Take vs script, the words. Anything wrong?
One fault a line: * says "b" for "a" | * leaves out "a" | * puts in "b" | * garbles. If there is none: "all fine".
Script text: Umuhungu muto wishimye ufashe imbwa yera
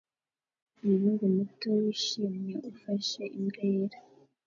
all fine